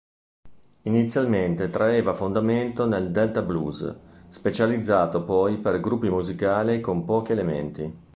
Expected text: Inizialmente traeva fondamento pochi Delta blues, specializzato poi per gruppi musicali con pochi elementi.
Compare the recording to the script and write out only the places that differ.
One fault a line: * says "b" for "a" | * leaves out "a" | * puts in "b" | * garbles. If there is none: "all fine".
* says "nel" for "pochi"